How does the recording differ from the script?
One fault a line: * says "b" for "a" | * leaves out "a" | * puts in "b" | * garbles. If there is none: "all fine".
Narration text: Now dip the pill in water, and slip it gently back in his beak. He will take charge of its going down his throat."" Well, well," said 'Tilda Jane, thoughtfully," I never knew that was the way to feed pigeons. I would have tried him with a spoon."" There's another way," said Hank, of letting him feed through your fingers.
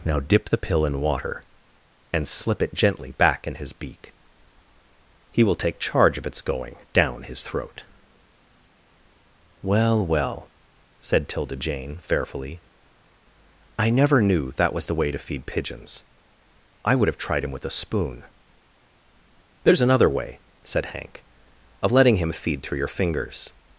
* says "fearfully" for "thoughtfully"